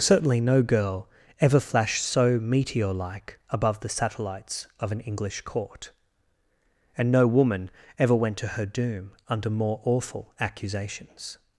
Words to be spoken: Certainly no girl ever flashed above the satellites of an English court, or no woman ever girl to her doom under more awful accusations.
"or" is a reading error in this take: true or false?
true